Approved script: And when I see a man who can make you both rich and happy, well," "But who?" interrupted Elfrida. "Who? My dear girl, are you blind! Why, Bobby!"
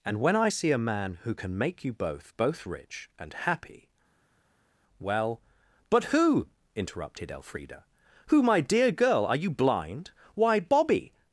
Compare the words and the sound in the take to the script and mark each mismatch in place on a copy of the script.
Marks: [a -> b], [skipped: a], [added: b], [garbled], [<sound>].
And when I see a man who can make you both [added: both] rich and happy, well," "But who?" interrupted Elfrida. "Who? My dear girl, are you blind! Why, Bobby!"